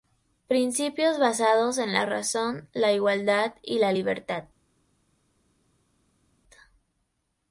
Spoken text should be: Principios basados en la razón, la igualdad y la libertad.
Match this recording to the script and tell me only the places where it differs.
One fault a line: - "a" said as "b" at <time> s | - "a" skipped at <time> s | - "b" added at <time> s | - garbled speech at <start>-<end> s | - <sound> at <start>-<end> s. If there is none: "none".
none